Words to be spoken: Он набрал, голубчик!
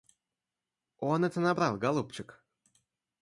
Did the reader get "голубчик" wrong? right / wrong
right